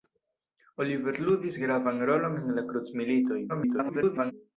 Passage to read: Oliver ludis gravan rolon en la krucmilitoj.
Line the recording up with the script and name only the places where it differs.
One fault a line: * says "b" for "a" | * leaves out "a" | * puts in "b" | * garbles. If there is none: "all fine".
* garbles